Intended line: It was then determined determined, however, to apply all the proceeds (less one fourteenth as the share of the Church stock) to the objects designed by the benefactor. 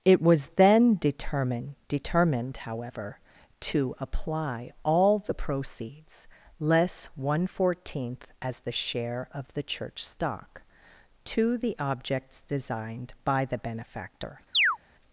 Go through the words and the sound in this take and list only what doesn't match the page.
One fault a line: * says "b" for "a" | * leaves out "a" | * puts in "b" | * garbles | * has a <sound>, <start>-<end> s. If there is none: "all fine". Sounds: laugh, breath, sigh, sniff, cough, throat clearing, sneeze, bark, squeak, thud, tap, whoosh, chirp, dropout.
* has a chirp, 14.5-14.8 s